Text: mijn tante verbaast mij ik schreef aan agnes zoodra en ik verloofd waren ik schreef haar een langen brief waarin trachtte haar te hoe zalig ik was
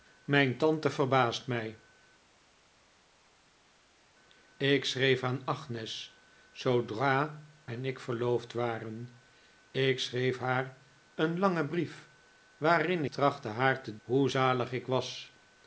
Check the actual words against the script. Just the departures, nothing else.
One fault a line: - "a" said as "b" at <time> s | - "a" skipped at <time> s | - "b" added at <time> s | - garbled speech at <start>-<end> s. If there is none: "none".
none